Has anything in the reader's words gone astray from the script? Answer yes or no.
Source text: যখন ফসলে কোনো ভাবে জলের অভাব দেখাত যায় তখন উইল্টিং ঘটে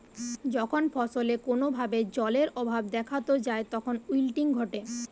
no